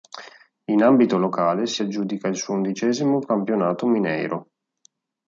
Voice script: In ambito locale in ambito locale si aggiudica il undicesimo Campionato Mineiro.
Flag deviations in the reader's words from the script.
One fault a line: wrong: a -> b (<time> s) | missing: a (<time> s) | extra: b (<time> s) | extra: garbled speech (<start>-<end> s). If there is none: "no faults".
missing: in ambito locale (1.7 s)
extra: suo (2.4 s)